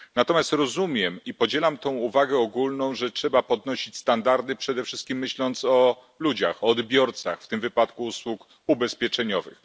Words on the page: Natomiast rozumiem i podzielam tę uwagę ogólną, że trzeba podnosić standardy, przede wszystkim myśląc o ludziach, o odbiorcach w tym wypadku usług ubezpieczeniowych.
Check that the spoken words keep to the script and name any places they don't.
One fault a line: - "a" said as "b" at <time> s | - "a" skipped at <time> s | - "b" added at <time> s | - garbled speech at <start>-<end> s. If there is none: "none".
none